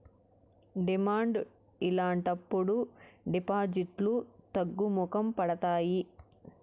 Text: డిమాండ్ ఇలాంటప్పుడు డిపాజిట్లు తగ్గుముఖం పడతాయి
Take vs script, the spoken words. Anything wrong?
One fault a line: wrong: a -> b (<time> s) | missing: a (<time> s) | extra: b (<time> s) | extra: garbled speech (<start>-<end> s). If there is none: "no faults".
no faults